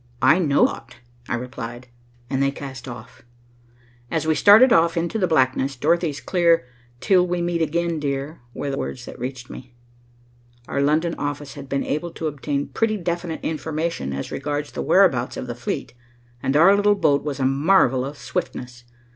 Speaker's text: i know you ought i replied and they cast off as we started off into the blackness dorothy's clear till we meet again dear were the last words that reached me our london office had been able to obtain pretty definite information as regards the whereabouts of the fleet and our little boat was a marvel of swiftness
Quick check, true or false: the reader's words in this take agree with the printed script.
false